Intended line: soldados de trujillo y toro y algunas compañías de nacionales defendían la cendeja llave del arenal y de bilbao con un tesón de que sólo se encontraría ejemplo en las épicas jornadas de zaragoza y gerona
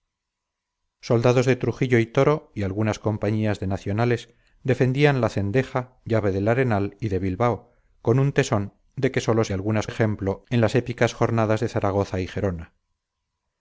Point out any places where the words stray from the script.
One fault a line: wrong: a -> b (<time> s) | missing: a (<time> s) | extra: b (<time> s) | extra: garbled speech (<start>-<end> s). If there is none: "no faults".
wrong: encontraría -> algunas (9.5 s)